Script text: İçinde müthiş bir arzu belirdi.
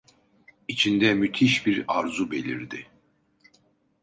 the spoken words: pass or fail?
pass